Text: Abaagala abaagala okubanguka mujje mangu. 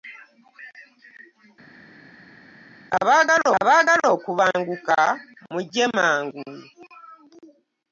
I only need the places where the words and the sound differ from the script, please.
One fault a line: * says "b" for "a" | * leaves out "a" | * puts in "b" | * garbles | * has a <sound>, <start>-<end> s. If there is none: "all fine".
all fine